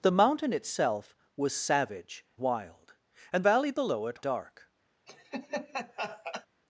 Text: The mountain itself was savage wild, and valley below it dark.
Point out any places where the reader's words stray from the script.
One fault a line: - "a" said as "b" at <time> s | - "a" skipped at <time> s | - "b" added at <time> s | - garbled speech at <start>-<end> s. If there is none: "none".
none